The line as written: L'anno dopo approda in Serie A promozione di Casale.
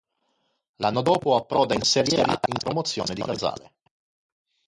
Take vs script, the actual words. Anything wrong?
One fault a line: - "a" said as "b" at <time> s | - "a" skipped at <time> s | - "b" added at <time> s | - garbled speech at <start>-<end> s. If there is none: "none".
none